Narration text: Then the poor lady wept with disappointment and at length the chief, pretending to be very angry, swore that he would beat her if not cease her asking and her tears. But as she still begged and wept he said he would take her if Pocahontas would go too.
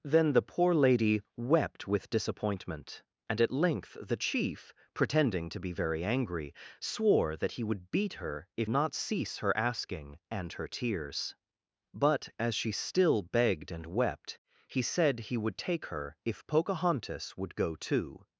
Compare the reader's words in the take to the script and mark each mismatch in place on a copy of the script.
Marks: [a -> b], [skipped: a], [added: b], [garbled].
Then the poor lady wept with disappointment and at length the chief, pretending to be very angry, swore that he would beat her if not cease her asking and her tears. But as she still begged and wept he said he would take her if Pocahontas would go too.